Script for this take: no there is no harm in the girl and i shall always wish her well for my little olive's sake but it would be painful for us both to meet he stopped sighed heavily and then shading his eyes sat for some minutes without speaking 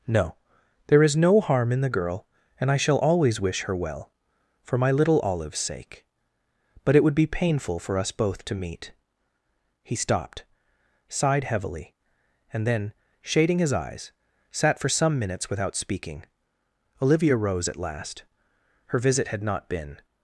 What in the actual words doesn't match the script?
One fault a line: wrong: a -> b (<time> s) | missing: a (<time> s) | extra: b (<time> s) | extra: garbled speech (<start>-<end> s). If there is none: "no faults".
extra: olivia rose at last her visit had not been (17.0 s)